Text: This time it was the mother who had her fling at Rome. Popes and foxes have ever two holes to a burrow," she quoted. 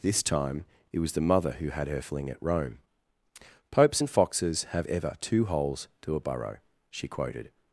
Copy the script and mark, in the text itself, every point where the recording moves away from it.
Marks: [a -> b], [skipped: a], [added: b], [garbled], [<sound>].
This time it was the mother who had her fling at Rome. Popes and foxes have ever two holes to a burrow," she quoted.